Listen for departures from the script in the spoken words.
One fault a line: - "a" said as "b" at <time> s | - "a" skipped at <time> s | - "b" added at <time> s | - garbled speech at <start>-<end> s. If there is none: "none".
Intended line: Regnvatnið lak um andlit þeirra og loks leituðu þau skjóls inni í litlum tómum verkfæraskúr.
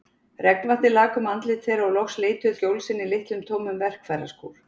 - "þau" skipped at 2.5 s